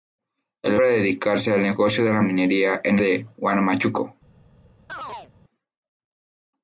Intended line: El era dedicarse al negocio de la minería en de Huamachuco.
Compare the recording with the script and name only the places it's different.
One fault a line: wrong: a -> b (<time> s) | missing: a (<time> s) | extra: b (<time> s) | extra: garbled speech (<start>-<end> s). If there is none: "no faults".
no faults